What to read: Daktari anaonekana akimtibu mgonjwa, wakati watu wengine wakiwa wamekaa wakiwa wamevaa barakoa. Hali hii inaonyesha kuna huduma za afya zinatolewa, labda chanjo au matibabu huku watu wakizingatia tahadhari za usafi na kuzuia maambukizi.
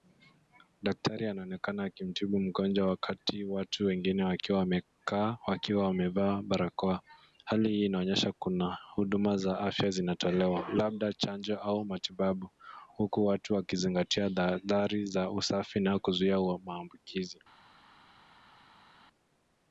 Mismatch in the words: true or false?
false